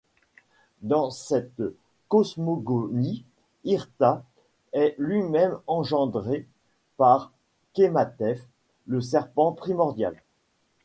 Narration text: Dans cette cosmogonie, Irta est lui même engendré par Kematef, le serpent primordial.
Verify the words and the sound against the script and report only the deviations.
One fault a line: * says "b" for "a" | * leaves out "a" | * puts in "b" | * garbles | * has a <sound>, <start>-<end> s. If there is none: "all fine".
all fine